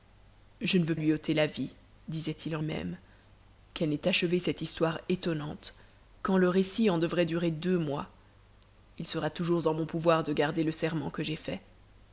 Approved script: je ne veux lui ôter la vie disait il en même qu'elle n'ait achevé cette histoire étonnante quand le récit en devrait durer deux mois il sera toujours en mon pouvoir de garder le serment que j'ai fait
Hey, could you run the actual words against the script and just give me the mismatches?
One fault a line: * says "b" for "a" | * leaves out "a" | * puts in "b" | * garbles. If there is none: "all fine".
all fine